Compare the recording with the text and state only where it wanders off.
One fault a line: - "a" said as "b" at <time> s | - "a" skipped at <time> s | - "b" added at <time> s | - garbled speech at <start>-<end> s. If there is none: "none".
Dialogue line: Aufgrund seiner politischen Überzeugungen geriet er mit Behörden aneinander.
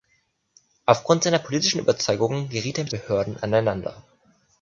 none